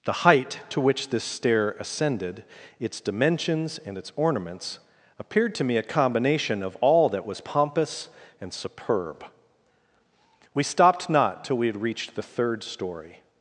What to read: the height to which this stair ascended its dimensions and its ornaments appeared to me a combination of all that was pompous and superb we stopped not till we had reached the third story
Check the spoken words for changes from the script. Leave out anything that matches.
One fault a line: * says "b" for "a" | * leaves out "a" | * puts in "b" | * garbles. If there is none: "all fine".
all fine